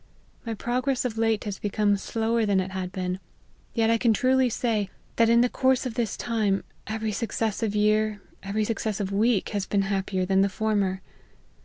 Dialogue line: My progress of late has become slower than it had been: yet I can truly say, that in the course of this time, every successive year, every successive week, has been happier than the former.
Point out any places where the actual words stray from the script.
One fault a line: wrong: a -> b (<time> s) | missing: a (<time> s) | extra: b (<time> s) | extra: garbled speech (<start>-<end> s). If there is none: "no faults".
no faults